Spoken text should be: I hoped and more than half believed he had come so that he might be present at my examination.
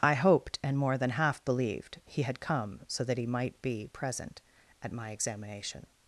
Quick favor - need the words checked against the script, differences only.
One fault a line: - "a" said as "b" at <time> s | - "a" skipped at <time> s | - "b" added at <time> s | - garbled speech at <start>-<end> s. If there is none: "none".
none